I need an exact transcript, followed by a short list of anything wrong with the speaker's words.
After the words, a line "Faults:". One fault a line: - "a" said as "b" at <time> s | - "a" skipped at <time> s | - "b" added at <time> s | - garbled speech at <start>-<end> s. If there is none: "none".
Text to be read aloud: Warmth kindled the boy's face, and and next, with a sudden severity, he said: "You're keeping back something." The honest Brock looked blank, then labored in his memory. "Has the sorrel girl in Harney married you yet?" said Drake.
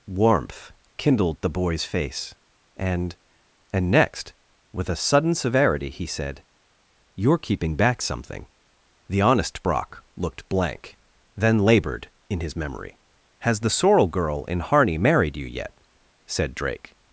Warmth kindled the boy's face, and and next, with a sudden severity, he said: "You're keeping back something." The honest Brock looked blank, then labored in his memory. "Has the sorrel girl in Harney married you yet?" said Drake.
Faults:
none